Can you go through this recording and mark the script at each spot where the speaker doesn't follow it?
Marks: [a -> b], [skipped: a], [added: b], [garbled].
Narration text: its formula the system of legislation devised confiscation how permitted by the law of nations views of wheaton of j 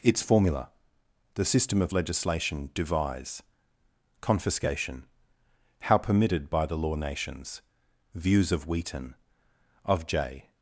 its formula the system of legislation [devised -> devise] confiscation how permitted by the law [skipped: of] nations views of wheaton of j